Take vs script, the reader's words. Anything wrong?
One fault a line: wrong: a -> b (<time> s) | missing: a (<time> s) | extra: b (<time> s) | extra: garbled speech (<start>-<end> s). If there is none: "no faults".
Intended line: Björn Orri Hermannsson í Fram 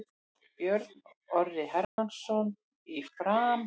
no faults